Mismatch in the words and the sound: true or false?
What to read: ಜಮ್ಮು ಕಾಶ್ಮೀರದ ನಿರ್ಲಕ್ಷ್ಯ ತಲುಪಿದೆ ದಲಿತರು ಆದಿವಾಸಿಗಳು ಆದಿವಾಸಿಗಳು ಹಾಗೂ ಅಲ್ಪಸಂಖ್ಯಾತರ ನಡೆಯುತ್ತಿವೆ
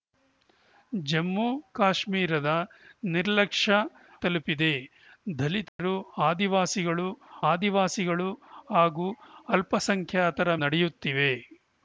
true